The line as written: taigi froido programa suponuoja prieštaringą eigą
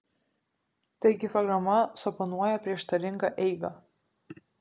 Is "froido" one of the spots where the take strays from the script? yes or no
yes